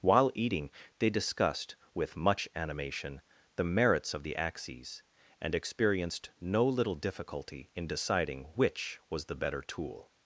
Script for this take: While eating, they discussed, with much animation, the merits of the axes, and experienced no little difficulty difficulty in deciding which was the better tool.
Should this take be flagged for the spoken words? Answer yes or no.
yes